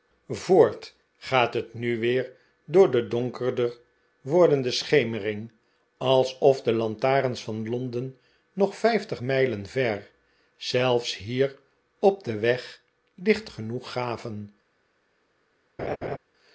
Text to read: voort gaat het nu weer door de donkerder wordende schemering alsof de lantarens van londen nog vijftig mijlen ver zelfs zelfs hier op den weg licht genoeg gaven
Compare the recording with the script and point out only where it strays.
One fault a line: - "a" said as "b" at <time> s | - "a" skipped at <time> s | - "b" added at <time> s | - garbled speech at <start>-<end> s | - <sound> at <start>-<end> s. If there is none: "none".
- "zelfs" skipped at 11.2 s
- laugh at 15.8-16.2 s